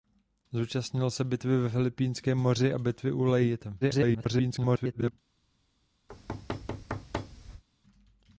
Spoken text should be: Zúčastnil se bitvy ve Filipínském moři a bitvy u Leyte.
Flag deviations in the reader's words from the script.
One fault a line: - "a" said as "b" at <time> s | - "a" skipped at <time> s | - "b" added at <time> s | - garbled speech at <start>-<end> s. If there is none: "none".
- garbled speech at 3.8-5.1 s